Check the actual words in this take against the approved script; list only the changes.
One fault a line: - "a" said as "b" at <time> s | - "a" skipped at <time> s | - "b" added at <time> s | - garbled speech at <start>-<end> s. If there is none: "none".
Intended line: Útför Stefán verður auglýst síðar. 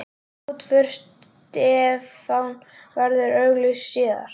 none